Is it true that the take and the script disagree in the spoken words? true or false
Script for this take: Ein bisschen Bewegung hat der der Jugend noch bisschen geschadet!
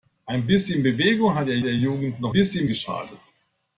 false